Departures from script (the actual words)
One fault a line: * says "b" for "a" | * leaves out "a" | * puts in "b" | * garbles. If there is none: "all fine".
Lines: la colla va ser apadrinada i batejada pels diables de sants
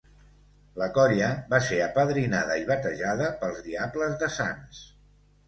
all fine